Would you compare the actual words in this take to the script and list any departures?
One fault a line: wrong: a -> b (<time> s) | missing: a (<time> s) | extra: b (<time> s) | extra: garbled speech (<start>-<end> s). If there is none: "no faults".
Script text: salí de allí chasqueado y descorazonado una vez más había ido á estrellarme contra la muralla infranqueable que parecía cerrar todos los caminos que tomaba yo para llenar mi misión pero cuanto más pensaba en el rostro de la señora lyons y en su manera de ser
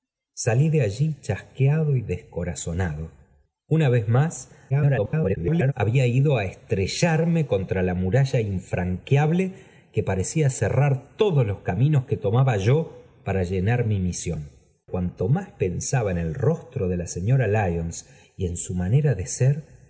extra: garbled speech (4.7-5.7 s)
missing: pero (14.5 s)